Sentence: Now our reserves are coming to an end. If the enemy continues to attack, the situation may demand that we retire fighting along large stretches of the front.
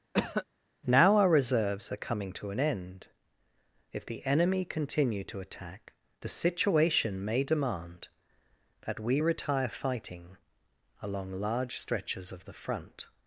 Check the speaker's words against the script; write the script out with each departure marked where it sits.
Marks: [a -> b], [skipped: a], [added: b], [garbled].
Now our reserves are coming to an end. If the enemy [continues -> continue] to attack, the situation may demand that we retire fighting along large stretches of the front.